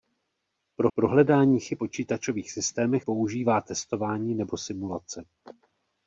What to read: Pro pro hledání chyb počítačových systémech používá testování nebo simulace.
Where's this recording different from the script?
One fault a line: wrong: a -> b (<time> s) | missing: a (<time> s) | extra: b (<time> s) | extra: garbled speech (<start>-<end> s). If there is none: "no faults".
no faults